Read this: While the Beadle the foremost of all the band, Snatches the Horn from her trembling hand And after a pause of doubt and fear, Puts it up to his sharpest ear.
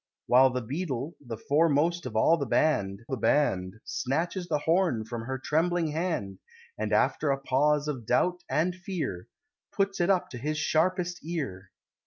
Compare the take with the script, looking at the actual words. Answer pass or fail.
fail